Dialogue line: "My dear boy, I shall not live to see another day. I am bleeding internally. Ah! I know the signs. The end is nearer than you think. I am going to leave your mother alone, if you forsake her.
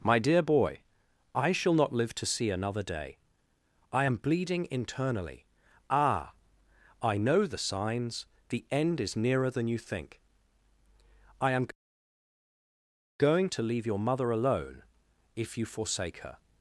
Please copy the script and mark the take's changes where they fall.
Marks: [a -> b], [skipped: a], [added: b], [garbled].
"My dear boy, I shall not live to see another day. I am bleeding internally. Ah! I know the signs. The end is nearer than you think. I am going to leave your mother alone, if you forsake her.